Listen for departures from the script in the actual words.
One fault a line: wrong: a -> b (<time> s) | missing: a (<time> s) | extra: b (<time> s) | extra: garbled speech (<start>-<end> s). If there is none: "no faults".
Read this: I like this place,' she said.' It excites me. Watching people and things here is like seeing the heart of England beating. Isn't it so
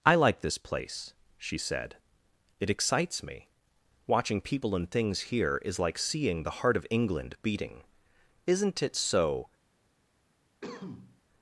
no faults